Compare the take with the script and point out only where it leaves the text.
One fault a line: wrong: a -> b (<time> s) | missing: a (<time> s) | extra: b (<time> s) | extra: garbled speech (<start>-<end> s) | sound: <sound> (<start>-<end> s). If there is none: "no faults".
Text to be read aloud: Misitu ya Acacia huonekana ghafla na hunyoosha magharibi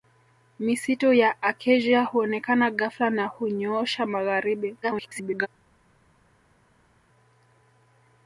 extra: garbled speech (4.8-5.5 s)